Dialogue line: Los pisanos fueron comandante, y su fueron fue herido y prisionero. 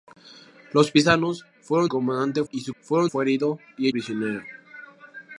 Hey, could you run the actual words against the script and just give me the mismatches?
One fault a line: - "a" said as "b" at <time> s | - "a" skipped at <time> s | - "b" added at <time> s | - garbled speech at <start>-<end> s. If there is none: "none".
none